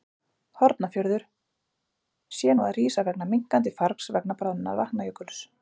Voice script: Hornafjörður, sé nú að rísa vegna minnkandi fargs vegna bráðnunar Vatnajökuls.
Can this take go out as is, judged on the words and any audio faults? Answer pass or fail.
pass